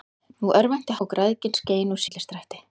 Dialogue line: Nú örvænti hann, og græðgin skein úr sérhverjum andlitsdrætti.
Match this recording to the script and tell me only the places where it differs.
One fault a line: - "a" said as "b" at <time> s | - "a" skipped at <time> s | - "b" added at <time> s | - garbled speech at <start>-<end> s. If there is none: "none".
- "hann" skipped at 1.0 s
- "sérhverjum" skipped at 2.0 s